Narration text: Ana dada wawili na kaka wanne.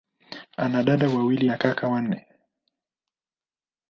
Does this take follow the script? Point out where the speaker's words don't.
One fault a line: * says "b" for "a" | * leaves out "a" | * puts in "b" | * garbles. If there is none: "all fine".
all fine